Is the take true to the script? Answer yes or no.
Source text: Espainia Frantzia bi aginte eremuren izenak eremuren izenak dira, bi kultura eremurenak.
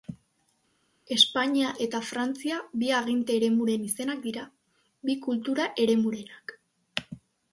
no